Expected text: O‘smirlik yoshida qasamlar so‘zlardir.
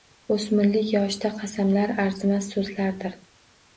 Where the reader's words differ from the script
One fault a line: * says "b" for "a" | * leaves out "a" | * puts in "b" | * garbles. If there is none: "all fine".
* puts in "arzimas"